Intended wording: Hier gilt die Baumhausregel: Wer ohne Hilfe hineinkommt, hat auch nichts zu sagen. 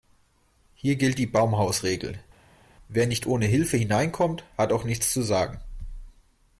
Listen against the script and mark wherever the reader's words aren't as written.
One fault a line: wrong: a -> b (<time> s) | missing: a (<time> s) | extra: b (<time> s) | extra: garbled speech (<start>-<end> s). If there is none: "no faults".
extra: nicht (3.1 s)